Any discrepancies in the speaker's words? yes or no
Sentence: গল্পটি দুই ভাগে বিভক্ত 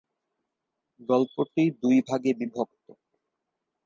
no